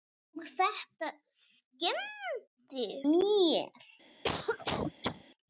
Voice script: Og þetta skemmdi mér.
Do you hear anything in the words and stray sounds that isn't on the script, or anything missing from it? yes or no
yes